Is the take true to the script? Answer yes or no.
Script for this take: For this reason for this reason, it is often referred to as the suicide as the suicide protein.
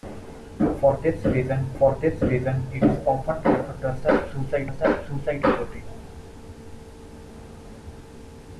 yes